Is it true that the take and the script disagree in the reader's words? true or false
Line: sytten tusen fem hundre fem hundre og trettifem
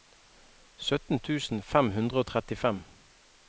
true